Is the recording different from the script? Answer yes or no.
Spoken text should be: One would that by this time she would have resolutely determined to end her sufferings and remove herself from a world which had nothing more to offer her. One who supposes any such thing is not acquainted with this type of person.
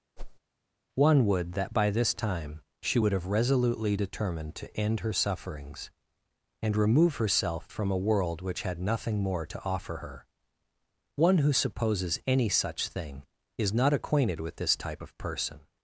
no